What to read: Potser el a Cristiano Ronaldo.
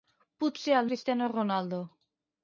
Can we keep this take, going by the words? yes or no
yes